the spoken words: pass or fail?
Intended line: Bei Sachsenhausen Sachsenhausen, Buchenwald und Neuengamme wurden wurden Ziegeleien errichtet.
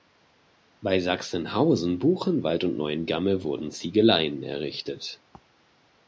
fail